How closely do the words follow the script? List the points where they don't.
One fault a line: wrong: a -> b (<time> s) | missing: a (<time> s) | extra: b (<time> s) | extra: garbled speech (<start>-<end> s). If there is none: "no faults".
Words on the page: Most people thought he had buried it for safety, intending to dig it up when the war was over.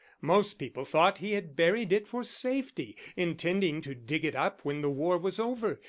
no faults